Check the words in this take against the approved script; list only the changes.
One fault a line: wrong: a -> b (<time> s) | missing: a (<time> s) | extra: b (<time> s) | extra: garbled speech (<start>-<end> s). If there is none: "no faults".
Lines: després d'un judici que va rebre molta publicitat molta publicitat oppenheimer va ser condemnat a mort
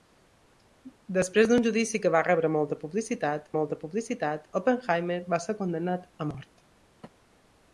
no faults